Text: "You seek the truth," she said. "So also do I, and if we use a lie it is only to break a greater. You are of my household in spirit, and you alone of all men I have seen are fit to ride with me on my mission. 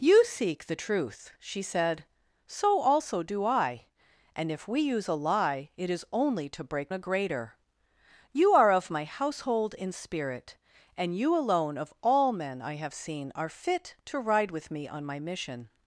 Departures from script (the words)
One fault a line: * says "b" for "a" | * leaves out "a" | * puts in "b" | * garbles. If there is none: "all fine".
all fine